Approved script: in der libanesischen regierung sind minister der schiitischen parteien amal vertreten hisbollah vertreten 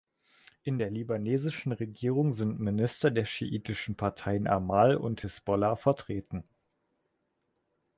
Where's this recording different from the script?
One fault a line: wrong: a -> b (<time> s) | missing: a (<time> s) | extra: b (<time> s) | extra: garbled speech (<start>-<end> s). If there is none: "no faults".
wrong: vertreten -> und (4.9 s)